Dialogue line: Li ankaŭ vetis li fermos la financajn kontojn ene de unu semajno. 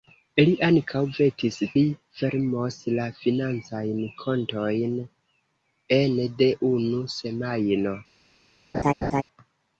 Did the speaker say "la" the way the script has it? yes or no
yes